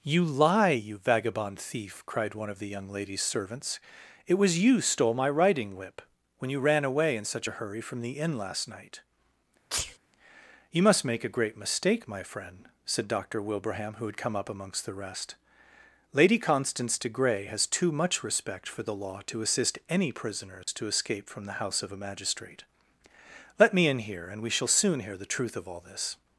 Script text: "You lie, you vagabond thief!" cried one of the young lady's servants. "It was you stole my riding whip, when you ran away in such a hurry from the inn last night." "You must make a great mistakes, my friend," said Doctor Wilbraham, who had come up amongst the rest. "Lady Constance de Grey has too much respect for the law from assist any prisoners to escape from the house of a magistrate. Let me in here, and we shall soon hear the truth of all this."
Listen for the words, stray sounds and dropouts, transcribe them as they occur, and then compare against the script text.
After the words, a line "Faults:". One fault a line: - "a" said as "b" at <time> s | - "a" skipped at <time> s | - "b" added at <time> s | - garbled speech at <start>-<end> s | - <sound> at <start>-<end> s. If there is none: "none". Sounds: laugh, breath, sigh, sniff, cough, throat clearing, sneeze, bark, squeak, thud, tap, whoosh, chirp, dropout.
"You lie, you vagabond thief!" cried one of the young lady's servants. "It was you stole my riding whip, when you ran away in such a hurry from the inn last night." "You must make a great mistake, my friend," said Doctor Wilbraham, who had come up amongst the rest. "Lady Constance de Grey has too much respect for the law to assist any prisoners to escape from the house of a magistrate. Let me in here, and we shall soon hear the truth of all this."
Faults:
- sneeze at 9.7-10.0 s
- "mistakes" said as "mistake" at 11.6 s
- "from" said as "to" at 19.3 s
- dropout at 20.6-20.7 s